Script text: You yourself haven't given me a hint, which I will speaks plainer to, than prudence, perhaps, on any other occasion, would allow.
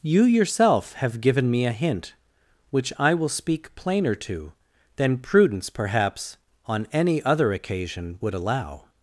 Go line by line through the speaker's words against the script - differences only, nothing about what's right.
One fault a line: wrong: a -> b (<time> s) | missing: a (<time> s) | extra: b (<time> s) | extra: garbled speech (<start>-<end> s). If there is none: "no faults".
wrong: haven't -> have (0.9 s)
wrong: speaks -> speak (3.3 s)